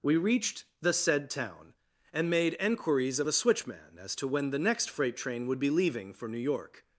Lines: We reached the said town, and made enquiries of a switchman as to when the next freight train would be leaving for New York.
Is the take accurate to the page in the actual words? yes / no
yes